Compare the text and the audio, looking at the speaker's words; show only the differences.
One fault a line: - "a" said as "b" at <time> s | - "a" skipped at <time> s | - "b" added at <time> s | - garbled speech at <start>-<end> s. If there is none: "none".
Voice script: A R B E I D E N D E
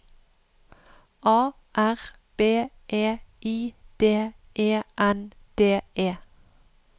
none